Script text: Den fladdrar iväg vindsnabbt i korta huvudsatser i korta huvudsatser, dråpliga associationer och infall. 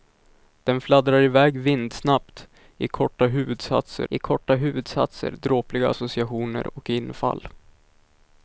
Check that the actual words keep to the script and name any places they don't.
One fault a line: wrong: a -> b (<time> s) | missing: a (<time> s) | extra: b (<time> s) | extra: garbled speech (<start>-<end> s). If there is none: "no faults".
no faults